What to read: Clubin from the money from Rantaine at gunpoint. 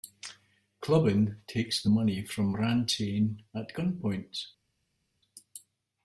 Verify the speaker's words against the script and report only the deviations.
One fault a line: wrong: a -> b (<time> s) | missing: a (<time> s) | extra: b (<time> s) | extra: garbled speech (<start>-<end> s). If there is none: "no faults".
wrong: from -> takes (1.4 s)